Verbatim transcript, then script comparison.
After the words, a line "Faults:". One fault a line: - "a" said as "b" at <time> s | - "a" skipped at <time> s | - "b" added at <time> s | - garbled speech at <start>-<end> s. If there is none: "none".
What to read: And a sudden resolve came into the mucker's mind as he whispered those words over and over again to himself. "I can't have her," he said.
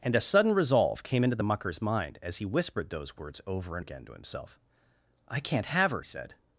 And a sudden resolve came into the mucker's mind as he whispered those words over and again to himself. "I can't have her," said.
Faults:
- "over" skipped at 3.8 s
- "he" skipped at 6.0 s